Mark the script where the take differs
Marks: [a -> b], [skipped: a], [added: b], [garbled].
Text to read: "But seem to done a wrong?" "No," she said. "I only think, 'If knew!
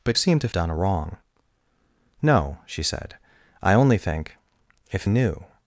"But seem to done a wrong?" "No," she said. "I only think, 'If knew!